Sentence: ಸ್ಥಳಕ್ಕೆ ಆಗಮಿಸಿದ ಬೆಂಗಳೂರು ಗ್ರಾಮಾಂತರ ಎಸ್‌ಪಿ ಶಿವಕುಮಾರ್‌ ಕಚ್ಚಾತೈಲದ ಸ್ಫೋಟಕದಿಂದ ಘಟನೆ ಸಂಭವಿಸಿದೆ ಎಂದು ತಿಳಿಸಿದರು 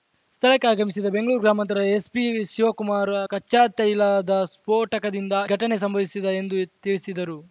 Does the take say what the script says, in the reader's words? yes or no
yes